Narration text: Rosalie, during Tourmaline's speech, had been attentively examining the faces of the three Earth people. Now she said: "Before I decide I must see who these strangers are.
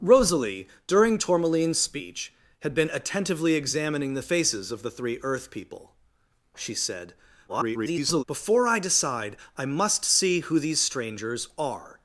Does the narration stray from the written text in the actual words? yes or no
yes